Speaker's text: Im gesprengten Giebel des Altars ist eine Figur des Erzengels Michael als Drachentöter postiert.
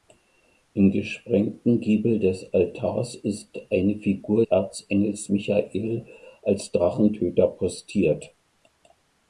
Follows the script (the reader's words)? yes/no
no